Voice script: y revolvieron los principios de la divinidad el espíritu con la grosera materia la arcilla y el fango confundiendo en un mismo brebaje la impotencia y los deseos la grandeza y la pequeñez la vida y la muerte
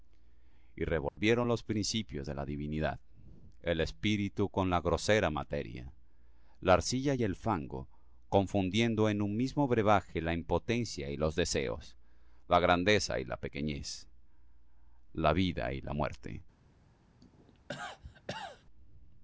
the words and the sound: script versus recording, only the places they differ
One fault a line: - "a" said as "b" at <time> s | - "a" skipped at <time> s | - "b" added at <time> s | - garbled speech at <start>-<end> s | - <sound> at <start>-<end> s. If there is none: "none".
- dropout at 1.1-1.2 s
- cough at 17.2-18.6 s